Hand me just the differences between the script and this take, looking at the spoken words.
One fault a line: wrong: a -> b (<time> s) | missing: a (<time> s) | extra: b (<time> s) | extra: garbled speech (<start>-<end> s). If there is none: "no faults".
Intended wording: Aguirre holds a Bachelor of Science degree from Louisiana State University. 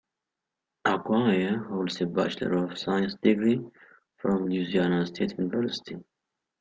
no faults